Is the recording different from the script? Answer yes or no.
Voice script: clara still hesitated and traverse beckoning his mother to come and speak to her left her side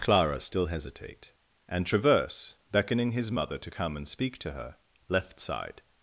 yes